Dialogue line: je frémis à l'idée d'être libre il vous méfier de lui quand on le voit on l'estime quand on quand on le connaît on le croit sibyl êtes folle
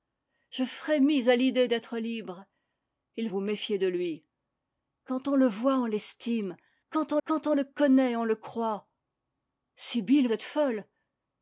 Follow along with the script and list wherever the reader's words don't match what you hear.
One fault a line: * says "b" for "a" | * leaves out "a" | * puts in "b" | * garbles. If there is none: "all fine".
all fine